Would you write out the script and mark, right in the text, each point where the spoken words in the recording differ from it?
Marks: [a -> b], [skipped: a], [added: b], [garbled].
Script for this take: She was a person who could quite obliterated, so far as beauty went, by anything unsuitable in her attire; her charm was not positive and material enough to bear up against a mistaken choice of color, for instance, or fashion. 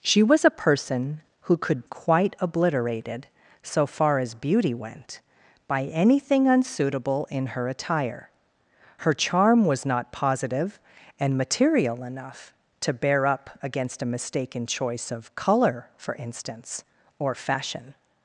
She was a person who could quite obliterated, so far as beauty went, by anything unsuitable in her attire; her charm was not positive and material enough to bear up against a mistaken choice of color, for instance, or fashion.